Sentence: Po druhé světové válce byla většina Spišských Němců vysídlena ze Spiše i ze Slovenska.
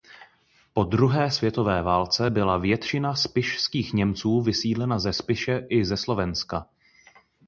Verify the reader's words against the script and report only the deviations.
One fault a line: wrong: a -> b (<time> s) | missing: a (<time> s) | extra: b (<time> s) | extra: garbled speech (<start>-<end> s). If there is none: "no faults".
no faults